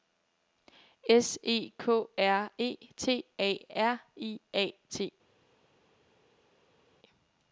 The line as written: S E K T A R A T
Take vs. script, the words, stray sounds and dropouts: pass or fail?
fail